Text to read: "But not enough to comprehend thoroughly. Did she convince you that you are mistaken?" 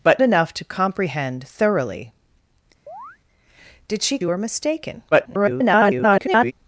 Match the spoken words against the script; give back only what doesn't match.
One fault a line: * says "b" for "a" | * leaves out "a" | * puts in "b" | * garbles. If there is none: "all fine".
* leaves out "not"
* leaves out "convince you that"
* garbles